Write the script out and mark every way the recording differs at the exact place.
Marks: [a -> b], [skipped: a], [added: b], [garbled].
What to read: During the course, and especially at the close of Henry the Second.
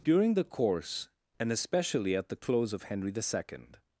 During the course, and especially at the close of Henry the Second.